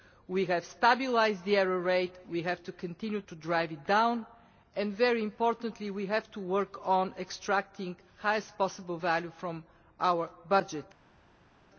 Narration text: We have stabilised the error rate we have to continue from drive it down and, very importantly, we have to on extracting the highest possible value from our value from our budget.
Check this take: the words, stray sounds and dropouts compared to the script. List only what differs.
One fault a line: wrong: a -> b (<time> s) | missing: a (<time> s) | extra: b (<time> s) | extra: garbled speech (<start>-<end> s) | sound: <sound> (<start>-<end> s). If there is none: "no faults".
wrong: from -> to (3.2 s)
extra: work (6.4 s)
missing: value from our (10.3 s)